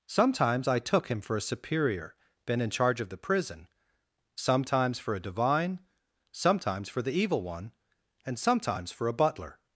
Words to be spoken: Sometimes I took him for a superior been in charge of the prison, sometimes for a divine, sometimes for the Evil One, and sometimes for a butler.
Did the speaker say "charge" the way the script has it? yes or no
yes